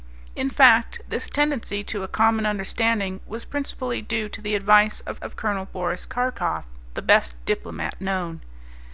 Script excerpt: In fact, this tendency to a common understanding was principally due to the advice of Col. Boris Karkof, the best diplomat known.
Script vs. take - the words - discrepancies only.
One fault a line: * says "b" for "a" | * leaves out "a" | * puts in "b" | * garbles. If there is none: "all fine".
* puts in "of"